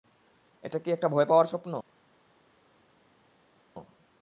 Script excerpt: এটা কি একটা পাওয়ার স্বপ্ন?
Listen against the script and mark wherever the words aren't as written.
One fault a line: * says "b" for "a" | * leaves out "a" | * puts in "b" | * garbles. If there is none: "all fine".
* puts in "ভয়"